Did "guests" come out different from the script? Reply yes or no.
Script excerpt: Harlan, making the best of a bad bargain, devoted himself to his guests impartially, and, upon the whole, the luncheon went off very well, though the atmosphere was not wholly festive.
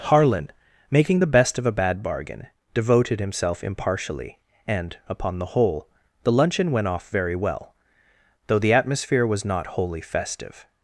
yes